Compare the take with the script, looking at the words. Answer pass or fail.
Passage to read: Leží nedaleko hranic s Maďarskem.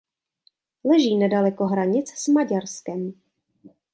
pass